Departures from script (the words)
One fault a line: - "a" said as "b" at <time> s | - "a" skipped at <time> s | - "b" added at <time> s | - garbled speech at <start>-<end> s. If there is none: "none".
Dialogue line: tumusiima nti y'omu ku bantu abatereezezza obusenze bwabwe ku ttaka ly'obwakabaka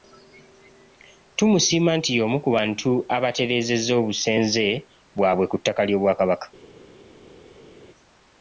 none